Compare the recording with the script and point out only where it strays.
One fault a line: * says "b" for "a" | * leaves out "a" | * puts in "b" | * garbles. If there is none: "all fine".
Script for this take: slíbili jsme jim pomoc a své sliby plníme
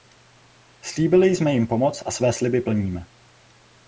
all fine